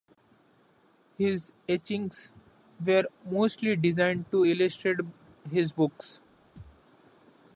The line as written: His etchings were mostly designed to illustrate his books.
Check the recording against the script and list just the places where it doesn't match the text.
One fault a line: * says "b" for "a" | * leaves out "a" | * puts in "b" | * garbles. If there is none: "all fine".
all fine